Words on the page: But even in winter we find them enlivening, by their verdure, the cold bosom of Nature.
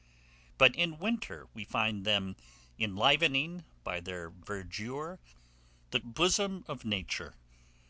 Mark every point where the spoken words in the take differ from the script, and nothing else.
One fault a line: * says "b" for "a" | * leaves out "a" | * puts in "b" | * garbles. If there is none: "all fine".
* leaves out "even"
* leaves out "cold"